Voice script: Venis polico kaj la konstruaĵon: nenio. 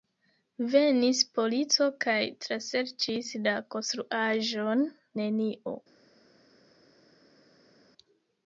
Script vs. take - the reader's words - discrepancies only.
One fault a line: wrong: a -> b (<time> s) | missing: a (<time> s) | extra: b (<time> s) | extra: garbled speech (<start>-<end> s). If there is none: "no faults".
extra: traserĉis (2.5 s)